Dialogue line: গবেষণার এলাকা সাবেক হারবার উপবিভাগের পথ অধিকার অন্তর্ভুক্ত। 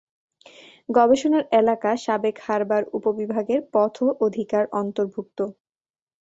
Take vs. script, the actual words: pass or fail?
pass